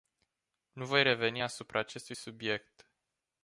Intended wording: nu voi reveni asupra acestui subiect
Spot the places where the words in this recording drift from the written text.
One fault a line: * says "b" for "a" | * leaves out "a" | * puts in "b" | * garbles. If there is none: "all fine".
all fine